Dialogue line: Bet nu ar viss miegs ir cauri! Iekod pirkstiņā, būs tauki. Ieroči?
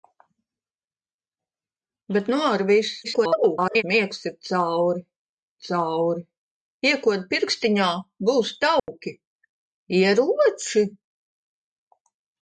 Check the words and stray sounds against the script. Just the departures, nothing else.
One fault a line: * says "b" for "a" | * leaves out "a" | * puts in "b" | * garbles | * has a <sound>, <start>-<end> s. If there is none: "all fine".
* garbles
* puts in "cauri"
* has a dropout, 8.8-8.9 s